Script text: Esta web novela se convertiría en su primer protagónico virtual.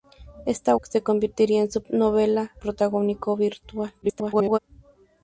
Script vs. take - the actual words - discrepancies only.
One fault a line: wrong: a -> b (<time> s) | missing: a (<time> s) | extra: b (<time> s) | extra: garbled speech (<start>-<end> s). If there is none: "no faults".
missing: web novela (0.8 s)
wrong: primer -> novela (1.9 s)
extra: garbled speech (4.0-4.6 s)